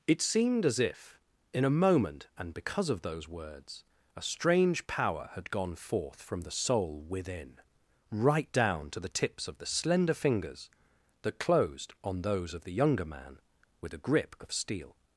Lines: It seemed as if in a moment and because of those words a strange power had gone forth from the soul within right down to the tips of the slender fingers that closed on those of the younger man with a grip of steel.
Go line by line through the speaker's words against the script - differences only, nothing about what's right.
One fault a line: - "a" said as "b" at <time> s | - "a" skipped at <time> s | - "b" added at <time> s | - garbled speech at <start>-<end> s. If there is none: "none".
none